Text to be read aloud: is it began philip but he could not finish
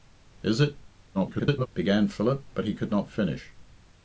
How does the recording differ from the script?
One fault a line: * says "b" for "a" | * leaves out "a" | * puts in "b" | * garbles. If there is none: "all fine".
* garbles